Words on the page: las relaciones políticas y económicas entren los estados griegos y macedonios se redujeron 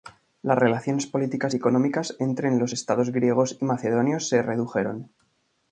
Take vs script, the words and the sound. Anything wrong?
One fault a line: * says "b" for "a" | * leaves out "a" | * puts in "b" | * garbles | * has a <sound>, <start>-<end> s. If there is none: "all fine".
all fine